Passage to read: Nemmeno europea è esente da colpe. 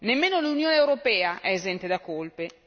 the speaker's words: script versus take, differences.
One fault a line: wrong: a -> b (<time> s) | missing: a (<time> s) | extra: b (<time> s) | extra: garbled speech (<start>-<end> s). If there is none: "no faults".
extra: l'Unione (0.4 s)